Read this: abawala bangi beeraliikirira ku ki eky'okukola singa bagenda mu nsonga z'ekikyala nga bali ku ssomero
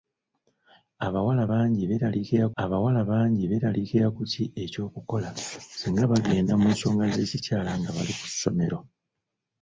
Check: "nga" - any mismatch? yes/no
no